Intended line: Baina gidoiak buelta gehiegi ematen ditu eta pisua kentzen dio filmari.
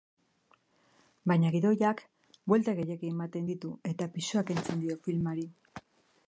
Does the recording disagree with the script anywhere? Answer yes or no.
no